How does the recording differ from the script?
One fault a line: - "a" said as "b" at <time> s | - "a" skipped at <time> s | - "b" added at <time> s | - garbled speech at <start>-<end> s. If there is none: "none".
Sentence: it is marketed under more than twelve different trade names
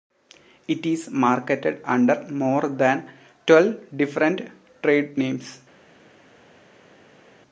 none